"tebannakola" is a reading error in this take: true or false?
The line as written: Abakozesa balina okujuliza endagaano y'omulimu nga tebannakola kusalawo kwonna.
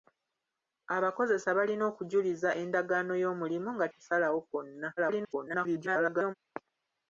true